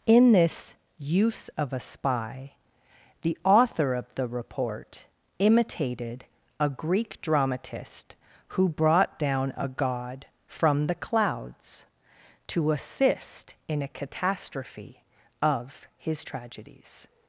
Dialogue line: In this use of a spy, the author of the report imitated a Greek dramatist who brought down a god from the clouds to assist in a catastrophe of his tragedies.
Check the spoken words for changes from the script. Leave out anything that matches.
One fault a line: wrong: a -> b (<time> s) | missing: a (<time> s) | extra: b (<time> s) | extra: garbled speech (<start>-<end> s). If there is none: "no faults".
no faults